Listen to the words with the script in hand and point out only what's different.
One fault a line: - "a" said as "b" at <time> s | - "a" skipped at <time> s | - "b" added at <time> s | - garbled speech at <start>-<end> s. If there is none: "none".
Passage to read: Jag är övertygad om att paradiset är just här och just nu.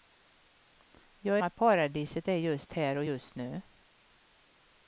- "är övertygad om" skipped at 1.4 s